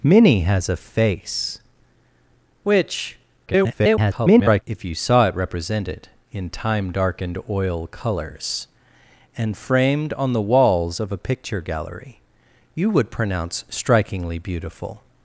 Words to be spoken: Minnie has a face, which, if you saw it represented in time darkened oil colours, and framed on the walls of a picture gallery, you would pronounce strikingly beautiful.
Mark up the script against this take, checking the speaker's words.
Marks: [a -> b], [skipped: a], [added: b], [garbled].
Minnie has a face, which, [garbled] if you saw it represented in time darkened oil colours, and framed on the walls of a picture gallery, you would pronounce strikingly beautiful.